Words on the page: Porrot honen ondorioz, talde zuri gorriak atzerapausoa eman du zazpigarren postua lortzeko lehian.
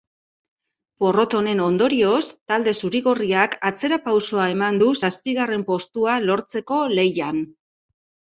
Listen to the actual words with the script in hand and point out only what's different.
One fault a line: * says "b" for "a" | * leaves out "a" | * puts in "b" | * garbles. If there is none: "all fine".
all fine